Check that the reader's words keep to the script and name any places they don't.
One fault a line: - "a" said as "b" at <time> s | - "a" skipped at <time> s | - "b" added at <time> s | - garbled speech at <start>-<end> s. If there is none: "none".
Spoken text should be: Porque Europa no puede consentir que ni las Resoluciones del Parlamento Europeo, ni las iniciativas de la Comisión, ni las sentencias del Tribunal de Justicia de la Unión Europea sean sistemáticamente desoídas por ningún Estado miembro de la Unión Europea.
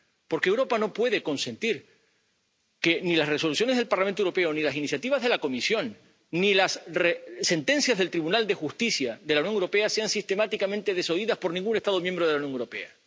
none